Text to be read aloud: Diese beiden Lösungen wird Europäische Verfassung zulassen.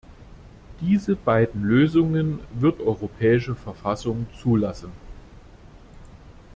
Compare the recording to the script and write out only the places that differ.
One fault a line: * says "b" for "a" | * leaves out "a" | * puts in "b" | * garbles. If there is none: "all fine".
all fine